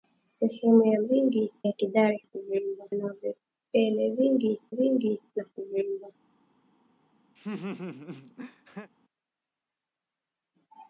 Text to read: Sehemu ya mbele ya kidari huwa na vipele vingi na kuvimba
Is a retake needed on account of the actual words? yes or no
yes